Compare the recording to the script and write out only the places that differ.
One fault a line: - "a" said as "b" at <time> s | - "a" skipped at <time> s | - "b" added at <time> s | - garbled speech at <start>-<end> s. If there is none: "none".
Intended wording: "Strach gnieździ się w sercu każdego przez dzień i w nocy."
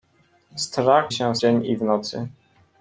- "gnieździ" skipped at 1.1 s
- "sercu każdego przez" skipped at 1.4 s